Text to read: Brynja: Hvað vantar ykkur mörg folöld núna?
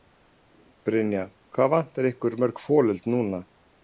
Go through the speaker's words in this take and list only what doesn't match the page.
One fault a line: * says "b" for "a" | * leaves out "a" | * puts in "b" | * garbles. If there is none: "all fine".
all fine